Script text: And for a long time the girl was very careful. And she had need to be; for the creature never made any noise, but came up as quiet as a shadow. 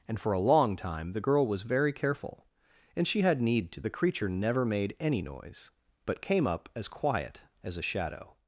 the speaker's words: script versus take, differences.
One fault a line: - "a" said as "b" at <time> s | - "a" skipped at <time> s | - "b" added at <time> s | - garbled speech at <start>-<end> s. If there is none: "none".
- "be for" skipped at 3.8 s